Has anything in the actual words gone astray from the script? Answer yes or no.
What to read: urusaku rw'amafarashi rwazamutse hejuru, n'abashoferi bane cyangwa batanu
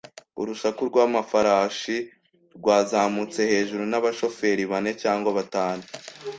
no